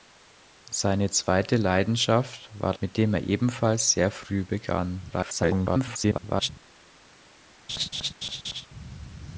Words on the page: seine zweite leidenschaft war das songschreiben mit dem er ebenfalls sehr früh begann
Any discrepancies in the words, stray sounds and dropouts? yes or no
yes